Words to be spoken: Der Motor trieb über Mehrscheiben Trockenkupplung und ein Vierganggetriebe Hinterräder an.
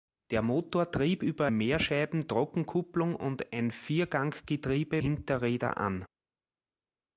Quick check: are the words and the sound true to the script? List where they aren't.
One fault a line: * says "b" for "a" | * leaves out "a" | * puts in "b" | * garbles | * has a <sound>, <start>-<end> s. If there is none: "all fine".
all fine